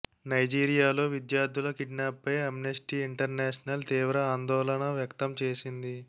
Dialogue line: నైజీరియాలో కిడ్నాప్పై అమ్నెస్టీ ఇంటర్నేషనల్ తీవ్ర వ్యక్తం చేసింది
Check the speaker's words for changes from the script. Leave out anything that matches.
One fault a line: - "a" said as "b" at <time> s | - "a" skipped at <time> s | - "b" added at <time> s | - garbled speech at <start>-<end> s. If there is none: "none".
- "విద్యార్థుల" added at 1.1 s
- "ఆందోళన" added at 4.3 s